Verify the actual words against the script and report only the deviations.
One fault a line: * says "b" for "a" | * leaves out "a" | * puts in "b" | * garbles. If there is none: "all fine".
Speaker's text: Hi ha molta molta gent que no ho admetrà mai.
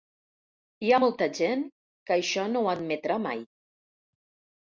* leaves out "molta"
* puts in "això"